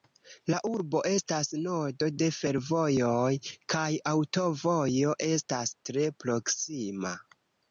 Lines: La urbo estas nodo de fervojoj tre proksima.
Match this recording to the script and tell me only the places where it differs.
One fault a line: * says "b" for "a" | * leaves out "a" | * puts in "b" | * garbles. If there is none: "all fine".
* puts in "kaj aŭtovojo estas"